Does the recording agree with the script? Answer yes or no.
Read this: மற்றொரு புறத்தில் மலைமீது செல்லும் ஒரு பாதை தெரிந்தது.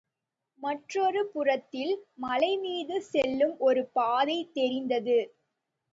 yes